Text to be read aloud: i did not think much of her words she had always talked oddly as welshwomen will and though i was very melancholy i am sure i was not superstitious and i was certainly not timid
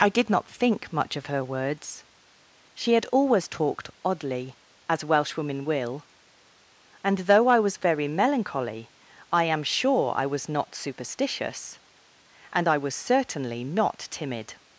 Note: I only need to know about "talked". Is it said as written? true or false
true